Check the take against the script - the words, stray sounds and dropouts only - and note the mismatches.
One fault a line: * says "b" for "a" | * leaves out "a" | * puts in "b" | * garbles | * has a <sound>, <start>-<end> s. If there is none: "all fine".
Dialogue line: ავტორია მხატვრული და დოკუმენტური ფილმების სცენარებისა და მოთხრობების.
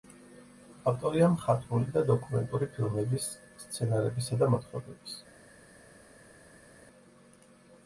all fine